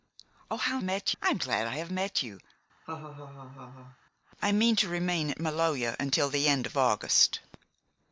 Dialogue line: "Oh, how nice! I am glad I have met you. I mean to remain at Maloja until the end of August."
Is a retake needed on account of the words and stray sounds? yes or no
yes